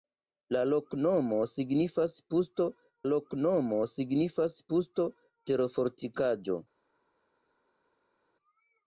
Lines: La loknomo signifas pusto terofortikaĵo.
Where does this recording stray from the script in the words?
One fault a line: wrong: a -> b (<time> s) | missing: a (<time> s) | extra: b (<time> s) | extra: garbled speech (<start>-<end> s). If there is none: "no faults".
extra: loknomo signifas pusto (3.1 s)